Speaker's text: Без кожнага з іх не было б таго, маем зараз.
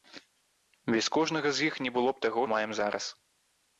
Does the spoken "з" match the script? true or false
true